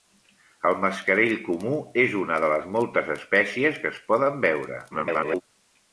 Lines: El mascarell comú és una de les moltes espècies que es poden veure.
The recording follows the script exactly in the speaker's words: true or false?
false